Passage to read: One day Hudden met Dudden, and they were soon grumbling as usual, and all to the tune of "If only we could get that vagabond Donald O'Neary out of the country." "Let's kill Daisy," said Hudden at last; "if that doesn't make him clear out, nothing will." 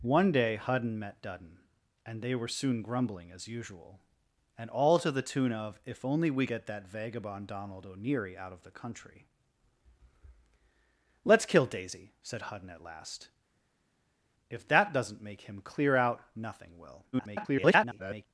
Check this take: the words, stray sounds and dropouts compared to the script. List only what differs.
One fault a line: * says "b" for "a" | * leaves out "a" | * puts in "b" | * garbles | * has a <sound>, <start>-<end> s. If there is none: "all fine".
* leaves out "could"
* garbles